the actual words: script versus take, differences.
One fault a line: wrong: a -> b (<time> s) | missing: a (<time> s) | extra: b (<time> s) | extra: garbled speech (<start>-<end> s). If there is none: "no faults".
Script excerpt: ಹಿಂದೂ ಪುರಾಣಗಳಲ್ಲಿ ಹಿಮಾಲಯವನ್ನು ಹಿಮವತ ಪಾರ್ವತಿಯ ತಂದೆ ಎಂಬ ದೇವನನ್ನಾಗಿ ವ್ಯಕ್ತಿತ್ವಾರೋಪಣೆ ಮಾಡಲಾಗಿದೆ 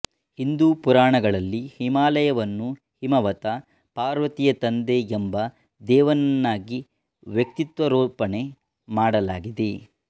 no faults